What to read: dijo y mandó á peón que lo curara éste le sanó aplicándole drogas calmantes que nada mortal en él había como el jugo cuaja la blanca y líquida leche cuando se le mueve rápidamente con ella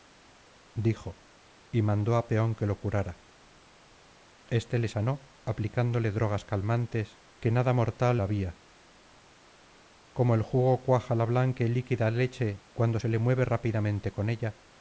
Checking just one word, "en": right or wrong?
wrong